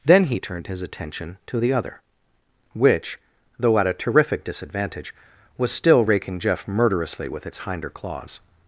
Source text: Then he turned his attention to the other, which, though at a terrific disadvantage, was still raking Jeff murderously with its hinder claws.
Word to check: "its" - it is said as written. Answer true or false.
true